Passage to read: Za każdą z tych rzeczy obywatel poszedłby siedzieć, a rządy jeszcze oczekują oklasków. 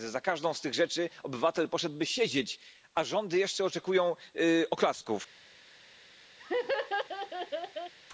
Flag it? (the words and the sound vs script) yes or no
yes